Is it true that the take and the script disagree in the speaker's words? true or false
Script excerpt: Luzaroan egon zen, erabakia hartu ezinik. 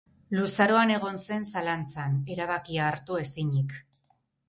true